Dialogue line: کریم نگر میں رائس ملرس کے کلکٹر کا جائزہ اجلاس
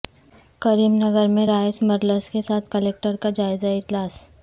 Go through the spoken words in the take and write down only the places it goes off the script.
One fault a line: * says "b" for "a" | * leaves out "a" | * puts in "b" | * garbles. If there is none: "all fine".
* puts in "ساتھ"